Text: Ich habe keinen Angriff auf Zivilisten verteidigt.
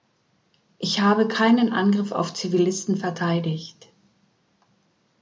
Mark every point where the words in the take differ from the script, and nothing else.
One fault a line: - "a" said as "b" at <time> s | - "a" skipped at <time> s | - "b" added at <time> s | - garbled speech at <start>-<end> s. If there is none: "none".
none